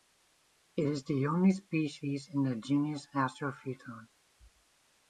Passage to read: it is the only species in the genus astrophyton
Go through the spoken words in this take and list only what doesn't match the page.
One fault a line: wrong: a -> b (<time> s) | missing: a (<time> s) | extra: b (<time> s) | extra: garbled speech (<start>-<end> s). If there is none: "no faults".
no faults